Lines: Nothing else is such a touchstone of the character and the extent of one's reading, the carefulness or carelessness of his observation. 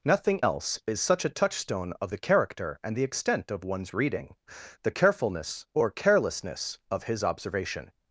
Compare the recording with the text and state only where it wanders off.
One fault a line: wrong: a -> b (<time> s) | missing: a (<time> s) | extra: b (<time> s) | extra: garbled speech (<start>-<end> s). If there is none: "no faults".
no faults